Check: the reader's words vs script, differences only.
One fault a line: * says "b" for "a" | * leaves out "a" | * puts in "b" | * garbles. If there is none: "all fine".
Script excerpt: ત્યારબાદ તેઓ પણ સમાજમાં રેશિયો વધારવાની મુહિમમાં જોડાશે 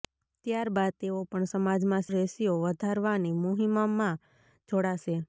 all fine